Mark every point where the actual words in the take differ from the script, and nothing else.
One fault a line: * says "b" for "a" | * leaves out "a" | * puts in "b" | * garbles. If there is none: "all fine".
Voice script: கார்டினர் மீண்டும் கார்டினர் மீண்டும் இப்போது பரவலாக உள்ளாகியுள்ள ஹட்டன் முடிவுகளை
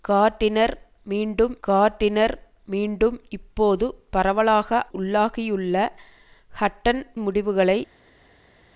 all fine